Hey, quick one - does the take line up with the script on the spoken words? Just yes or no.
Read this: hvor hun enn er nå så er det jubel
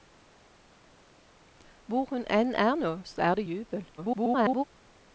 no